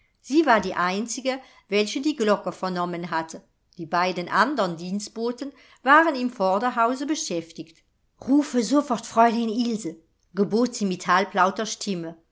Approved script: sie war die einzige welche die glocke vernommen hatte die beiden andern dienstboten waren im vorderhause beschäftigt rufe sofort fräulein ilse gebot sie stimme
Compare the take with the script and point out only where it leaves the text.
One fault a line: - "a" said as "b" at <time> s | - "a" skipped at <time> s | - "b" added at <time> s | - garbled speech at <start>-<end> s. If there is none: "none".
- "mit halblauter" added at 10.8 s